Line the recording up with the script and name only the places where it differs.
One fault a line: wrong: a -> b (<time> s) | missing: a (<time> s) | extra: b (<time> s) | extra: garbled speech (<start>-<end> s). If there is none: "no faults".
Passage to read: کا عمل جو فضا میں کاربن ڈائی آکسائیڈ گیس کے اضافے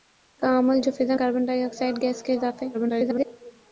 missing: میں (1.1 s)
extra: garbled speech (2.7-3.3 s)